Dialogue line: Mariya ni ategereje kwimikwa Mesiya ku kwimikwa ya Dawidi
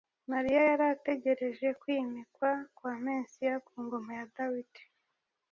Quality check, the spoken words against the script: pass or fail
fail